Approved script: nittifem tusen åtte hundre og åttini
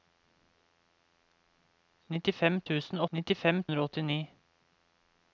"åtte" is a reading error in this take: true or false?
true